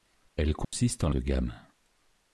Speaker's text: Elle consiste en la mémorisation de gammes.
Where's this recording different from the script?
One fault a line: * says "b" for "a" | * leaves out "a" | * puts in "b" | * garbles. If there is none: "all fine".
* leaves out "la mémorisation"